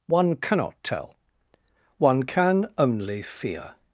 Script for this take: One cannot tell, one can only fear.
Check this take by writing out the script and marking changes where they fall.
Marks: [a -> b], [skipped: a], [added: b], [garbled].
One cannot tell, one can only fear.